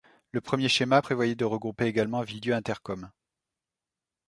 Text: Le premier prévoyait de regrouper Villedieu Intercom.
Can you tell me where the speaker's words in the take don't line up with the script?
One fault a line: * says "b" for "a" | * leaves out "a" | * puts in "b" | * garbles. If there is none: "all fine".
* puts in "schéma"
* puts in "également"